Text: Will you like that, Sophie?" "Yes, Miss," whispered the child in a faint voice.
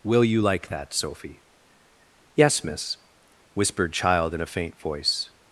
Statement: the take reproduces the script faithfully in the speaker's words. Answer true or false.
false